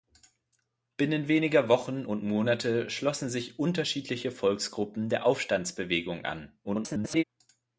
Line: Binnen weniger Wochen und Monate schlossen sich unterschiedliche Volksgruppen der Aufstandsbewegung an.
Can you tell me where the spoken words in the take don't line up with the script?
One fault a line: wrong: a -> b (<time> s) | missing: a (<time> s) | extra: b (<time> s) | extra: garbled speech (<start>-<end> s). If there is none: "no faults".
extra: garbled speech (6.6-7.2 s)